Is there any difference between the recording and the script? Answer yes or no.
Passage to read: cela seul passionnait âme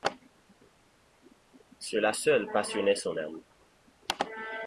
yes